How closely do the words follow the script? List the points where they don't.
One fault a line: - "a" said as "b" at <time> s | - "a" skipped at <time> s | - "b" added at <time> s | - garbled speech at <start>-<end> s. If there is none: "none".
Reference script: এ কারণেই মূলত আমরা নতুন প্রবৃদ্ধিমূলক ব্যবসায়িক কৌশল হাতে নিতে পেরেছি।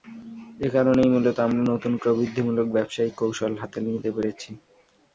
none